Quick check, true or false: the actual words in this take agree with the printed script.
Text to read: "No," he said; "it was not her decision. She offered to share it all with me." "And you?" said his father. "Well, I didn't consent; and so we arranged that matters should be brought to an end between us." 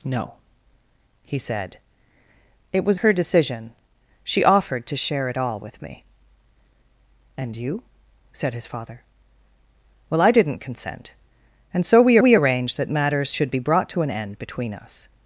false